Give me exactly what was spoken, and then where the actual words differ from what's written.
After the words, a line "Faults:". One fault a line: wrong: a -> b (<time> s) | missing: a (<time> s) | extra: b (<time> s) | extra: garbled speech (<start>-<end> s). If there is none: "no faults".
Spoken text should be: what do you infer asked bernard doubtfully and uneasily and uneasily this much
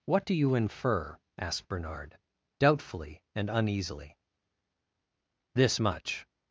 what do you infer asked bernard doubtfully and uneasily this much
Faults:
missing: and uneasily (4.2 s)